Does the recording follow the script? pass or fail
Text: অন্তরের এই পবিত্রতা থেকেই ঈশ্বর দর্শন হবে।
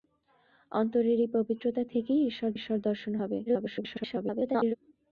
fail